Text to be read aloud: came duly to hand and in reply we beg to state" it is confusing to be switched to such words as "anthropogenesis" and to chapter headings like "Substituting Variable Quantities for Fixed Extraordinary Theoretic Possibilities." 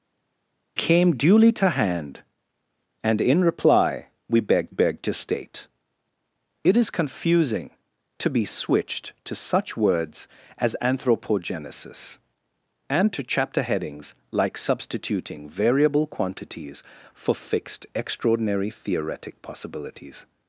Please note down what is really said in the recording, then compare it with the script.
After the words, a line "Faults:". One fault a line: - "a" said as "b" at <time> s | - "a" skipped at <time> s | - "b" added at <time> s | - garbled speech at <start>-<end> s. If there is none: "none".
came duly to hand and in reply we beg beg to state" it is confusing to be switched to such words as "anthropogenesis" and to chapter headings like "Substituting Variable Quantities for Fixed Extraordinary Theoretic Possibilities."
Faults:
- "beg" added at 4.7 s